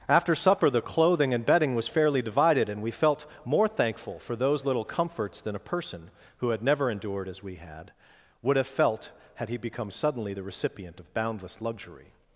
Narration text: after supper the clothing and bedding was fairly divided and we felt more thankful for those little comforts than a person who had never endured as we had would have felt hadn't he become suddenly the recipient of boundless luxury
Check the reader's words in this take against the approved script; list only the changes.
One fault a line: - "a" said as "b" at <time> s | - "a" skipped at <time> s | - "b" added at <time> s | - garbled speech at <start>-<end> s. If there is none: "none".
- "hadn't" said as "had" at 9.3 s